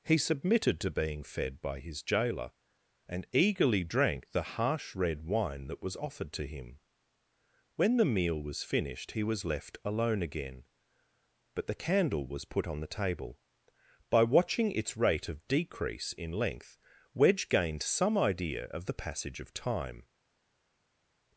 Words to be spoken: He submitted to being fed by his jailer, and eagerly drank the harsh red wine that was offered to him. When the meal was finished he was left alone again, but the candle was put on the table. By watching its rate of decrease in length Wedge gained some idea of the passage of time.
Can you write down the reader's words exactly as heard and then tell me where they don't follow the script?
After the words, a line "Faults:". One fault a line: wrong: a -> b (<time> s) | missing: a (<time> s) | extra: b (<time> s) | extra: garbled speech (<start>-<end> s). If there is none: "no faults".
He submitted to being fed by his jailer, and eagerly drank the harsh red wine that was offered to him. When the meal was finished he was left alone again, but the candle was put on the table. By watching its rate of decrease in length Wedge gained some idea of the passage of time.
Faults:
no faults